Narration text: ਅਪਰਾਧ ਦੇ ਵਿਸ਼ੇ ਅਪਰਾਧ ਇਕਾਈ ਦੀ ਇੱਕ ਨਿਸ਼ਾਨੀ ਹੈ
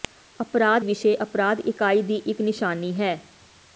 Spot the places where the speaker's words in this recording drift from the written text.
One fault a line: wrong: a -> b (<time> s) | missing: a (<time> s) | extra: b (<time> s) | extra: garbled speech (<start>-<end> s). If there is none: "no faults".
missing: ਦੇ (0.8 s)